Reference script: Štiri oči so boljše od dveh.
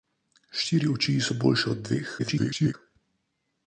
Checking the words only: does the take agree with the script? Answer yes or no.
no